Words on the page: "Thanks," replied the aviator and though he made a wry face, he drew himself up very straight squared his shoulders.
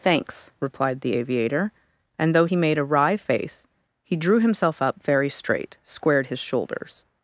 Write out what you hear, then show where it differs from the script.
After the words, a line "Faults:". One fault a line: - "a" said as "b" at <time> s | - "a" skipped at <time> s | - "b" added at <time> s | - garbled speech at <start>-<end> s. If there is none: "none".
"Thanks," replied the aviator and though he made a wry face, he drew himself up very straight squared his shoulders.
Faults:
none